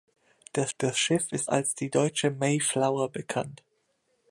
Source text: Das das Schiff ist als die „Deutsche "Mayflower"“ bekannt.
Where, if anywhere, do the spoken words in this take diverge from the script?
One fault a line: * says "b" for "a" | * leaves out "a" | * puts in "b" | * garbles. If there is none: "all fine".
all fine